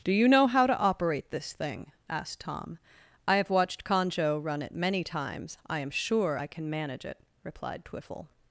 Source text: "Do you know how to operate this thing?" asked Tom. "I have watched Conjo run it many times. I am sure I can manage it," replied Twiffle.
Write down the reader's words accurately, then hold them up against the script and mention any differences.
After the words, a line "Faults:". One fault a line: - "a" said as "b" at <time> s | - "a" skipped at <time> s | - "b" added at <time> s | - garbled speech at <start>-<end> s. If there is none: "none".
"Do you know how to operate this thing?" asked Tom. "I have watched Conjo run it many times. I am sure I can manage it," replied Twiffle.
Faults:
none